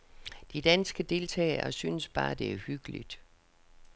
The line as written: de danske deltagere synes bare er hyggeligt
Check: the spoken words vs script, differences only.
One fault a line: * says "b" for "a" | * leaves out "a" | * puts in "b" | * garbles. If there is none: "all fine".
* puts in "det"